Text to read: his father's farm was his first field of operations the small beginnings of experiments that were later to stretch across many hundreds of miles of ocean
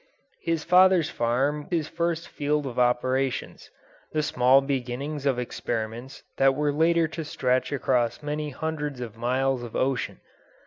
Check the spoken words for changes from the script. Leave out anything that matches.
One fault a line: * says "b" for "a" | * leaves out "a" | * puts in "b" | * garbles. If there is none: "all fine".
* leaves out "was"